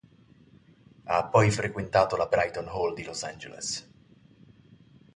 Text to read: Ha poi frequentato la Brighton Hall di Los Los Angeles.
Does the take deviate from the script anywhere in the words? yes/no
yes